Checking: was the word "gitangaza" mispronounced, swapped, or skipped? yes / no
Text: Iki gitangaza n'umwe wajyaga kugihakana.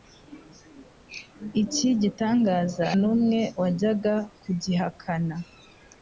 no